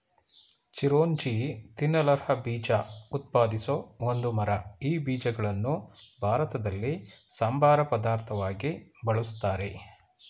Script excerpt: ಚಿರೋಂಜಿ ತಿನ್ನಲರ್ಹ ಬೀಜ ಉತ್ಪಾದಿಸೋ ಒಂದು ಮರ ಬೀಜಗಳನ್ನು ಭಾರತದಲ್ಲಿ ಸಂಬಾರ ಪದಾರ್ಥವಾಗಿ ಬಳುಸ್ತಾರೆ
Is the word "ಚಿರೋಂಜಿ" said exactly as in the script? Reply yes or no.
yes